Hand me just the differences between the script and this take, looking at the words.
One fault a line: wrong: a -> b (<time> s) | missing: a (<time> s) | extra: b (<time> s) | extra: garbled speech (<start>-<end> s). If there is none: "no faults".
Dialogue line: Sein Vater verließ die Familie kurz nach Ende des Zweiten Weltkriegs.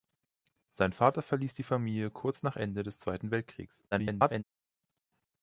extra: garbled speech (3.9-4.4 s)